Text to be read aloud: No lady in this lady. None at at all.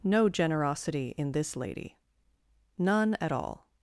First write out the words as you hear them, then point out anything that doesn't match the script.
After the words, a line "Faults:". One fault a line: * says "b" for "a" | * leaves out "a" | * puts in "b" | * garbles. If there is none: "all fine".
No generosity in this lady. None at all.
Faults:
* says "generosity" for "lady"
* leaves out "at"